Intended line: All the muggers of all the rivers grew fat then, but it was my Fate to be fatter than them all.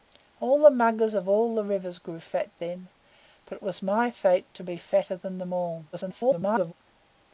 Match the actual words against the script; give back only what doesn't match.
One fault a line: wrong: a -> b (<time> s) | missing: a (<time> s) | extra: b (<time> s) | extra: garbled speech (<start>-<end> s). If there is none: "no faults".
extra: garbled speech (5.9-6.7 s)